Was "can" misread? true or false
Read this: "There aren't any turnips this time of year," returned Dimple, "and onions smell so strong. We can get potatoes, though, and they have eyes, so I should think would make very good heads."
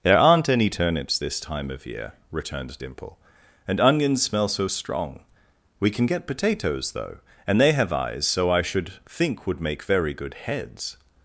false